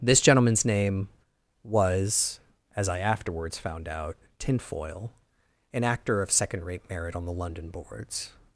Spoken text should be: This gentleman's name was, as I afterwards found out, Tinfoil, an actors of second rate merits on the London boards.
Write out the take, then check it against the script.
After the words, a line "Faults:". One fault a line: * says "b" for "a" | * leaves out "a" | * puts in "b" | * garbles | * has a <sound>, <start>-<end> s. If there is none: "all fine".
This gentleman's name was, as I afterwards found out, Tinfoil, an actor of second rate merit on the London boards.
Faults:
* says "actor" for "actors"
* says "merit" for "merits"